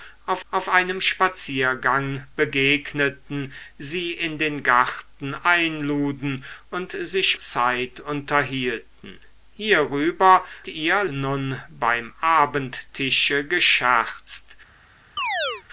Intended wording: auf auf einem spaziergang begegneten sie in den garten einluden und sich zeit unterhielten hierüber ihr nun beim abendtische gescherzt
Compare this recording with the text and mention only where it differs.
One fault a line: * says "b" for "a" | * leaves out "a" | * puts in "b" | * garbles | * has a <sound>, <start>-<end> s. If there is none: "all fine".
* has a chirp, 15.2-15.6 s